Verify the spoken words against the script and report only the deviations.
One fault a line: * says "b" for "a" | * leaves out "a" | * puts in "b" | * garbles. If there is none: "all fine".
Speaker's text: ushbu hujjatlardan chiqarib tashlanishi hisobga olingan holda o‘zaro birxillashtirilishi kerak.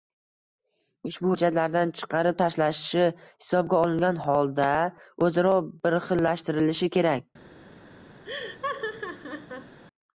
all fine